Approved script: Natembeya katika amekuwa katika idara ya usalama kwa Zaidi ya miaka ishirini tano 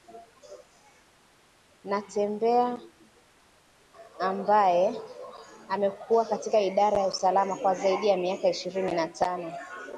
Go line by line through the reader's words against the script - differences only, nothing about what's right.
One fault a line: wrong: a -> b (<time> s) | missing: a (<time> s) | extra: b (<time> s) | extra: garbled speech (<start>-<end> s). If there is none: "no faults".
wrong: katika -> ambaye (4.2 s)
extra: na (8.9 s)